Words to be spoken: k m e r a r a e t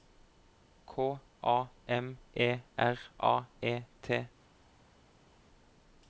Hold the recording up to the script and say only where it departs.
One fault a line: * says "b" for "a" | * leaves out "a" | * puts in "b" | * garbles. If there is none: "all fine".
* puts in "a"
* leaves out "r a"